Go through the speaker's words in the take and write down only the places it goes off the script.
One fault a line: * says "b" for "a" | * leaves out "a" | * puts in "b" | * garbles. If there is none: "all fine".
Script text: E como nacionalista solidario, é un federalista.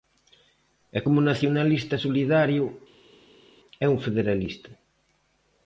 all fine